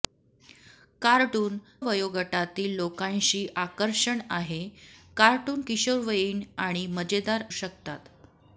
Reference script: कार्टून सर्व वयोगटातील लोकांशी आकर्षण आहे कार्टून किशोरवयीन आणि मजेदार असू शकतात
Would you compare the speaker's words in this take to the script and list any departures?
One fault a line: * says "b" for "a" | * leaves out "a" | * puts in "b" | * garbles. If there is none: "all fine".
* leaves out "सर्व"
* leaves out "असू"